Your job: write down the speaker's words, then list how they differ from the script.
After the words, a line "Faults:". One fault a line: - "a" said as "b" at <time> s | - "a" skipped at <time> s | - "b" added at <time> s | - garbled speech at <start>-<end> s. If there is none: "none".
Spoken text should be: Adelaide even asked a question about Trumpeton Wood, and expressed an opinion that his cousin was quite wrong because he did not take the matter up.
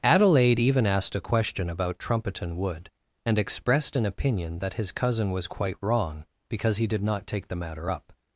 Adelaide even asked a question about Trumpeton Wood, and expressed an opinion that his cousin was quite wrong because he did not take the matter up.
Faults:
none